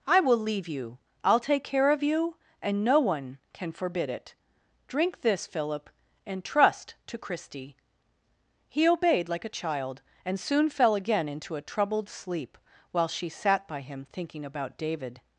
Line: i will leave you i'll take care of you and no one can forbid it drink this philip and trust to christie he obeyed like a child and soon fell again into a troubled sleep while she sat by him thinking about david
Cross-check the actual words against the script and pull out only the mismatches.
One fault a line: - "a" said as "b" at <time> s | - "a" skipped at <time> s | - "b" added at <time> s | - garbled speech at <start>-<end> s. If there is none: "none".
none